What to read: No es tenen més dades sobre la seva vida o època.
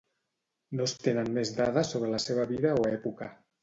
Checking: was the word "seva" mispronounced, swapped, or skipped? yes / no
no